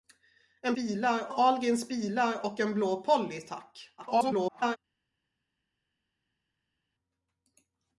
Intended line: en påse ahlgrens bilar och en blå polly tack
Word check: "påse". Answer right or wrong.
wrong